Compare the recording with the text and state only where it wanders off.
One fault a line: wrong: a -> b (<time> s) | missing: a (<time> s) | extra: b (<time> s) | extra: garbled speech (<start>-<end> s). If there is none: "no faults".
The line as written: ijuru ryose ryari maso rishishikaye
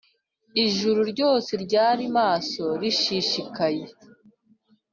no faults